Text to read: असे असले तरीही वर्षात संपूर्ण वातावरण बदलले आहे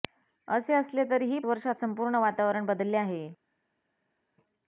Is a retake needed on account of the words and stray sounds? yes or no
no